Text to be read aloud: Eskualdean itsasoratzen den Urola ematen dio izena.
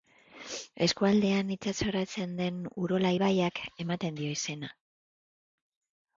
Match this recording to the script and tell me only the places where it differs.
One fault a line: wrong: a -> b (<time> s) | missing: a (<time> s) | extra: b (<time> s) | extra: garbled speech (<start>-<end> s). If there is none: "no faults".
extra: ibaiak (3.2 s)